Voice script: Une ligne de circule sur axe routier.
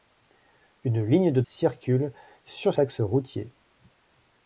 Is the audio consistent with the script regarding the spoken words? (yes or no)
yes